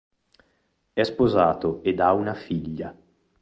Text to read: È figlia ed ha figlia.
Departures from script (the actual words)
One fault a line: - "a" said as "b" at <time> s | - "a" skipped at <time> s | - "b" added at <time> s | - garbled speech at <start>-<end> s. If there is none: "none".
- "figlia" said as "sposato" at 1.0 s
- "una" added at 2.1 s